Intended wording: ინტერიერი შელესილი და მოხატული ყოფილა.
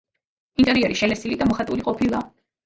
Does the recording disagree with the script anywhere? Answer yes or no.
no